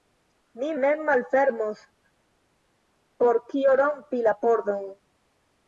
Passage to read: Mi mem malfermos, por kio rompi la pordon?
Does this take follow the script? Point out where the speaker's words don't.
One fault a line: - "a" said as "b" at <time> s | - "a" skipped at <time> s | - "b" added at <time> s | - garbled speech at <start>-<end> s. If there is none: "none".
none